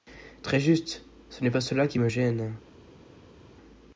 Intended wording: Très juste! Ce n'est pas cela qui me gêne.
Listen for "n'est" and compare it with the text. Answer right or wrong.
right